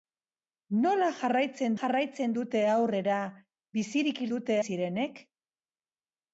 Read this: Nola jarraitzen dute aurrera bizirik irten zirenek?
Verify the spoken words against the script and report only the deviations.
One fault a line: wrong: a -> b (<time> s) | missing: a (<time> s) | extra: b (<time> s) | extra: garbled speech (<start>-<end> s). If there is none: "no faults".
extra: jarraitzen (1.8 s)
wrong: irten -> dute (4.3 s)